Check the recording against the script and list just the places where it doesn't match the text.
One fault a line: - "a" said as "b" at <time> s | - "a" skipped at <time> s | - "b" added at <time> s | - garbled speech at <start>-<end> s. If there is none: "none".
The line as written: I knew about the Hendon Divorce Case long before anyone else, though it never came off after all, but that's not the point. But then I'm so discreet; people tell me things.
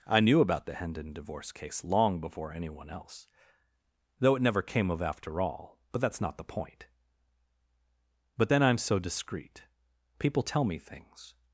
- "off" said as "of" at 4.9 s